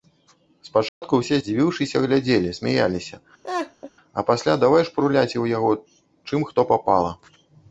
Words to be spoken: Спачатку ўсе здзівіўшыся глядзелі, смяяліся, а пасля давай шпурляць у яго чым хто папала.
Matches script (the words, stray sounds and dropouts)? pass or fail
fail